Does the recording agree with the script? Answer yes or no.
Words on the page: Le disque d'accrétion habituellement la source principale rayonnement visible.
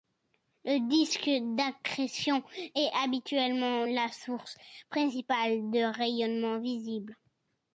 no